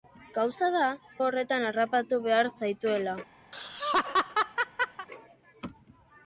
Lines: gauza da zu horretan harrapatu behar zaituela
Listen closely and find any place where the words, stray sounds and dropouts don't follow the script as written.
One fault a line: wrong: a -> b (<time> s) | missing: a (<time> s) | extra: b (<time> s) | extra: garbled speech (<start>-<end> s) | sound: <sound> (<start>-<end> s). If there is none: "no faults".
missing: zu (0.8 s)
sound: laugh (3.5-5.1 s)